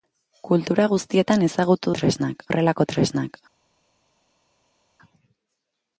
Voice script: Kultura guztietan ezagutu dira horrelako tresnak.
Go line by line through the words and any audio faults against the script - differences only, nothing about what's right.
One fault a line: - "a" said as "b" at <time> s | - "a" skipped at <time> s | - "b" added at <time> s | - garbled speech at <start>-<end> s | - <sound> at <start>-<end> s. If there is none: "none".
- "dira" said as "tresnak" at 2.0 s